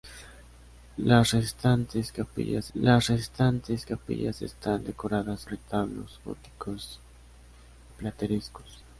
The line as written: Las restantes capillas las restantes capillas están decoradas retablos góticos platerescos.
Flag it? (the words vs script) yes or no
no